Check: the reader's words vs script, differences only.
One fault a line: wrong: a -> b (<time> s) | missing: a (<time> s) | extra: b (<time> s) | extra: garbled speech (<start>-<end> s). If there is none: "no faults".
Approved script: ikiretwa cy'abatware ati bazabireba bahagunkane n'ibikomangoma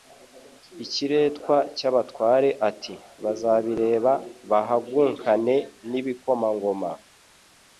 no faults